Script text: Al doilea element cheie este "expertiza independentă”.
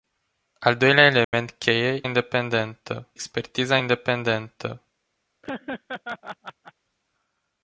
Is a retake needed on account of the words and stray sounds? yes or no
yes